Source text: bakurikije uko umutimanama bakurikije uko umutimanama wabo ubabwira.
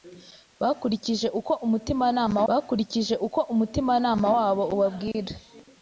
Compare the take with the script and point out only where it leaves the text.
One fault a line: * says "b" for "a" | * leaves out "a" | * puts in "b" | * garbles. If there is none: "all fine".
all fine